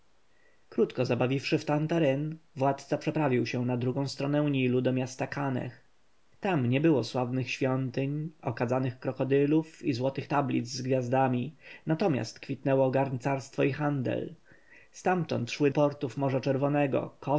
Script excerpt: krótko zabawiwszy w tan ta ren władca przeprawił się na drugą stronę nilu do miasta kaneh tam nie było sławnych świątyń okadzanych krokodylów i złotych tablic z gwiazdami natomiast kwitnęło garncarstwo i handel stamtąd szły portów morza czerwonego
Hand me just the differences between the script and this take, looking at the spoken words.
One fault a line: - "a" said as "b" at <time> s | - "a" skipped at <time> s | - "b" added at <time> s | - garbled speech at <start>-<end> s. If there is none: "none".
none